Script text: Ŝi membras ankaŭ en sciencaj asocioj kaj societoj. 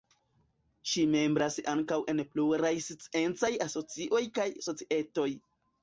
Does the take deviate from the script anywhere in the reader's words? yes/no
yes